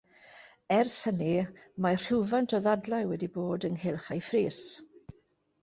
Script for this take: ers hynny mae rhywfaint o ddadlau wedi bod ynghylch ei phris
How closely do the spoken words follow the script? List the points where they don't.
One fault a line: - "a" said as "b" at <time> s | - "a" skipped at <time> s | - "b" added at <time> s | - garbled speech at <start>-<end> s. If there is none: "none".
none